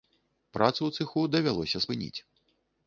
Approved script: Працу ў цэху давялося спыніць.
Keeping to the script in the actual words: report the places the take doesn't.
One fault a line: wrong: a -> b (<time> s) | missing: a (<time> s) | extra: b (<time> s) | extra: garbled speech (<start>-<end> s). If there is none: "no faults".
no faults